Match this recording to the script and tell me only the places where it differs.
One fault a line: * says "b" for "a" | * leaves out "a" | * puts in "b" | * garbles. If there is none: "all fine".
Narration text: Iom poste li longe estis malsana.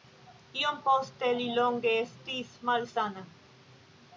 all fine